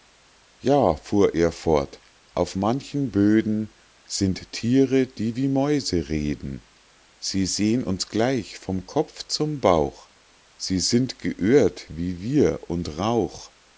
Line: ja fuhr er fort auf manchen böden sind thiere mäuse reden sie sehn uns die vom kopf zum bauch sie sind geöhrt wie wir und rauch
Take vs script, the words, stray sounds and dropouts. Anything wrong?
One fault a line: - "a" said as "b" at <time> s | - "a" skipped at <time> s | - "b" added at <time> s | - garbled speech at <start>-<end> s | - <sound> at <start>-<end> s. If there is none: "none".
- "die wie" added at 5.0 s
- "die" said as "gleich" at 8.1 s